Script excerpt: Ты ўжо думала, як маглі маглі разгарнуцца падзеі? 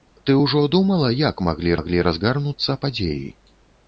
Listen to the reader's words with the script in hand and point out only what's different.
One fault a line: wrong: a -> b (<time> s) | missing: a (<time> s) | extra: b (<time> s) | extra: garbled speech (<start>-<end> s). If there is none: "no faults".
no faults